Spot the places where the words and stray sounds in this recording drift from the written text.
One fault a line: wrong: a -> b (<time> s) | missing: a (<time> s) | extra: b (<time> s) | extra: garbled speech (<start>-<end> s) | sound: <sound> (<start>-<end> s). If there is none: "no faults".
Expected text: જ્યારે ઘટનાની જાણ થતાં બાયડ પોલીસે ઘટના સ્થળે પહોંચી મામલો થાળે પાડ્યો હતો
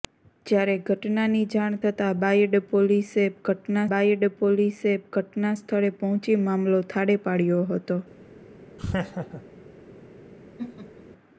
extra: બાયડ પોલીસે ઘટના (3.9 s)
sound: laugh (8.8-9.4 s)
sound: laugh (10.6-11.1 s)